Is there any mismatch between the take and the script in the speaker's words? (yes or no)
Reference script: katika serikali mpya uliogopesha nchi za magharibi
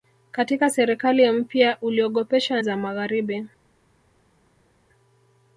yes